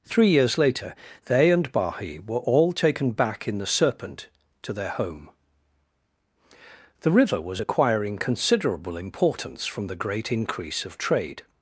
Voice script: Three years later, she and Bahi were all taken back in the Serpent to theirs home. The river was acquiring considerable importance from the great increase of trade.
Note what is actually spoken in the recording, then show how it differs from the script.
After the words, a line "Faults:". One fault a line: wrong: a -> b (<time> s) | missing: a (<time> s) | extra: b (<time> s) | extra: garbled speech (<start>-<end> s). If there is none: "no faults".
Three years later, they and Bahi were all taken back in the Serpent to their home. The river was acquiring considerable importance from the great increase of trade.
Faults:
wrong: she -> they (1.2 s)
wrong: theirs -> their (4.7 s)